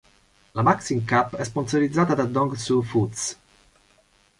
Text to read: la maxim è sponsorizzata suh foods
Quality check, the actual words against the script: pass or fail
fail